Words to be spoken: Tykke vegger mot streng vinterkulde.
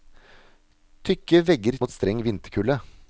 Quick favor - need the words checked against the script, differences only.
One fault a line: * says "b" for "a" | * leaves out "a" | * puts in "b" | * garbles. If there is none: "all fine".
all fine